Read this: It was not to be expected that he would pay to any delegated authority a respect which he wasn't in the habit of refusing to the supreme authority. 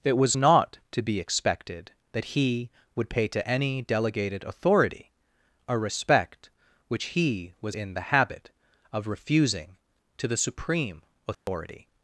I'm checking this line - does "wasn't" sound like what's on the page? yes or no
no